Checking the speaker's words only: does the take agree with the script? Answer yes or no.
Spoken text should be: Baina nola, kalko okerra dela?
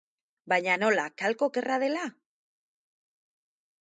yes